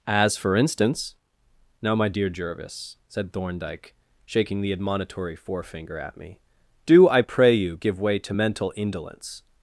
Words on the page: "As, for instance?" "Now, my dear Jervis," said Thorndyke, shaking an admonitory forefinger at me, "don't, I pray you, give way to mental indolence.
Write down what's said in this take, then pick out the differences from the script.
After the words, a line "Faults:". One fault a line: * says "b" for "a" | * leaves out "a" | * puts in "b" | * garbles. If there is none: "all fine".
"As, for instance?" "Now, my dear Jervis," said Thorndyke, shaking the admonitory forefinger at me, "do, I pray you, give way to mental indolence.
Faults:
* says "the" for "an"
* says "do" for "don't"